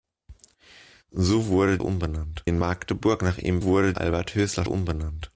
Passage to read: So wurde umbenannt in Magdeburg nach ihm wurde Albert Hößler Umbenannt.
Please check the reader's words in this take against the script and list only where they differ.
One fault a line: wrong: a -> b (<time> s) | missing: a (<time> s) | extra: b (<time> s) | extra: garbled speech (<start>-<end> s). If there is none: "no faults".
no faults